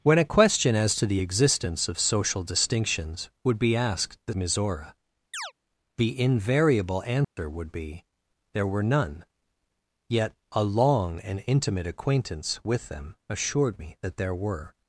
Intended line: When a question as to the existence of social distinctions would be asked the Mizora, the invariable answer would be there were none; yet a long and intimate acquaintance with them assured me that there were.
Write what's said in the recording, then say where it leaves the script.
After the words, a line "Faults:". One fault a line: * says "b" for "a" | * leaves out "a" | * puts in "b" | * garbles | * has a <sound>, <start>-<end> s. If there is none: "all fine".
When a question as to the existence of social distinctions would be asked the Mizora, the invariable answer would be there were none; yet a long and intimate acquaintance with them assured me that there were.
Faults:
* has a chirp, 5.3-5.5 s
* has a dropout, 7.2-7.4 s